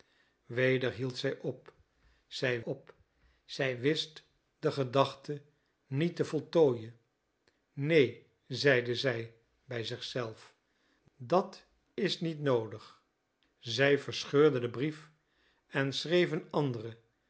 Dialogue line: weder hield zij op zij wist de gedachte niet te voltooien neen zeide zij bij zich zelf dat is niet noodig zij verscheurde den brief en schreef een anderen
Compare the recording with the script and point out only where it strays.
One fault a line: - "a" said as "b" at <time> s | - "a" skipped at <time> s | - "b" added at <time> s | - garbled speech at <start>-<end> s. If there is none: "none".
- "op zij" added at 2.6 s